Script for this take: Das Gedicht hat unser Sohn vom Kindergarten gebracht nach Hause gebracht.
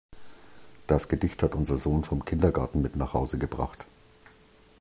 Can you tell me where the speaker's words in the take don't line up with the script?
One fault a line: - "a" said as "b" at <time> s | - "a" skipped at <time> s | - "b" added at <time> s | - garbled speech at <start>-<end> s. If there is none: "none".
- "gebracht" said as "mit" at 2.8 s